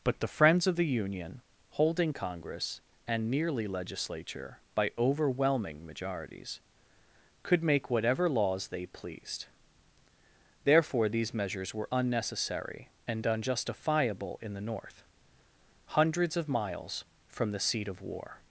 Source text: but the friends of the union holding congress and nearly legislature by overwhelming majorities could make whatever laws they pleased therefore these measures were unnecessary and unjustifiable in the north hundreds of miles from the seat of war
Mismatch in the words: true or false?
false